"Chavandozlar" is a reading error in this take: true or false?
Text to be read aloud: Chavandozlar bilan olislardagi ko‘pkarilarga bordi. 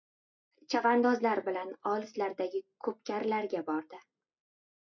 false